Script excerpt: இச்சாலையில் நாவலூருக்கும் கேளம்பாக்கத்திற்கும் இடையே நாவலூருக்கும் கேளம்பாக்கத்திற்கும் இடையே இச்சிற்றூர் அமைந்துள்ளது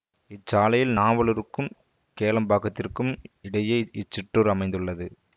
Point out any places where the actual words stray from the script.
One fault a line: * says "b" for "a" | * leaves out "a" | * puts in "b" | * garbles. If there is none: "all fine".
* leaves out "நாவலூருக்கும் கேளம்பாக்கத்திற்கும் இடையே"